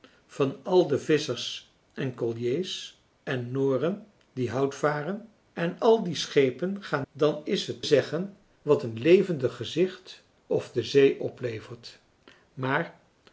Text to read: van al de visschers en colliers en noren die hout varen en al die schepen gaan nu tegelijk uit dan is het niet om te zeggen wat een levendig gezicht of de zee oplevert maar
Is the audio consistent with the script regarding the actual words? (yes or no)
no